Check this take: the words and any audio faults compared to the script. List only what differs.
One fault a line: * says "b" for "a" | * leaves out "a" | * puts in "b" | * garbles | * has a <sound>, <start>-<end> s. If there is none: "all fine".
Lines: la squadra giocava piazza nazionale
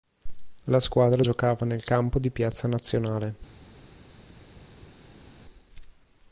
* puts in "nel campo di"